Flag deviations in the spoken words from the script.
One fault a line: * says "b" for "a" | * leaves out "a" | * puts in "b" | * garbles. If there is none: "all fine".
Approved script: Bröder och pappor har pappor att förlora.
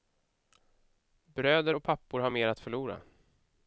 * says "mer" for "pappor"